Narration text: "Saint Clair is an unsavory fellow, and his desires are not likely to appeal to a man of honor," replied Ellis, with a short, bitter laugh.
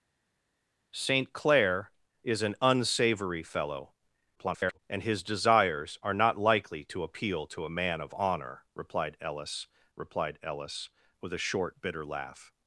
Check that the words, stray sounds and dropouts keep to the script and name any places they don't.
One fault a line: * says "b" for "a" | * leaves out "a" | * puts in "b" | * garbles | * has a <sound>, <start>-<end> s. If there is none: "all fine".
* garbles
* puts in "replied Ellis"